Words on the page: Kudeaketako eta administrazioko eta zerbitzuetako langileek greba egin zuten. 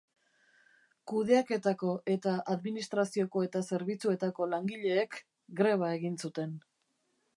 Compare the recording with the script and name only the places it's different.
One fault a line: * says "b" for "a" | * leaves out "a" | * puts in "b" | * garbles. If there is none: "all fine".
all fine